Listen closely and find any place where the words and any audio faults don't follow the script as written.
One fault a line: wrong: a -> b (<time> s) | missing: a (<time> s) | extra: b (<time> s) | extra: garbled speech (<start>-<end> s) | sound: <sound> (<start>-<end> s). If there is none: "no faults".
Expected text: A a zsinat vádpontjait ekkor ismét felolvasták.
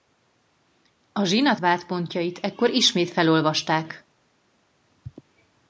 missing: a (1.2 s)